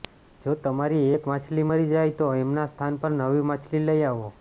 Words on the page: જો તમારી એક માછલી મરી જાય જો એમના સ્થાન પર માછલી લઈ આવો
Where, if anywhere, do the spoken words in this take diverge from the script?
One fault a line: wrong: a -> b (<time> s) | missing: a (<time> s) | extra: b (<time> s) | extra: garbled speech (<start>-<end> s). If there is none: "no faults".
wrong: જો -> તો (2.2 s)
extra: નવી (3.2 s)